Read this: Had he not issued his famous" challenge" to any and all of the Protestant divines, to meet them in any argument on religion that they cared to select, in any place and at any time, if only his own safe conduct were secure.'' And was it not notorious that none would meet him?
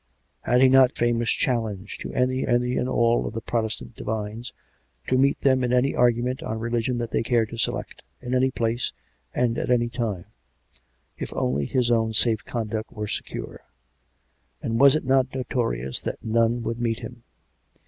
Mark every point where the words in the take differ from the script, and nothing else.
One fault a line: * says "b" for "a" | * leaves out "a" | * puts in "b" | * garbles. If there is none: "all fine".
* leaves out "issued his"
* puts in "any"